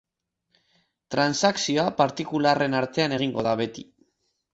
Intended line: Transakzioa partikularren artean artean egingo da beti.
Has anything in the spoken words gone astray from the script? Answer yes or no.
yes